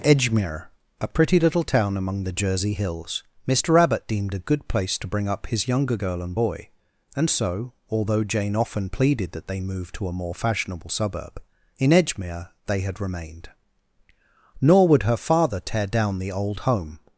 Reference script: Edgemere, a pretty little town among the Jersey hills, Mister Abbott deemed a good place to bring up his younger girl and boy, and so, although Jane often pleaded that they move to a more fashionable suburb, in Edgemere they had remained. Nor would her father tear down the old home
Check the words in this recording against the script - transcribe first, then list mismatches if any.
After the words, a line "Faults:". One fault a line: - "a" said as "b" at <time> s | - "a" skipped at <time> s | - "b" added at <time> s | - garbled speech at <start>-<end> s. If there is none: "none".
Edgemere, a pretty little town among the Jersey hills, Mister Abbott deemed a good place to bring up his younger girl and boy, and so, although Jane often pleaded that they move to a more fashionable suburb, in Edgemere they had remained. Nor would her father tear down the old home
Faults:
none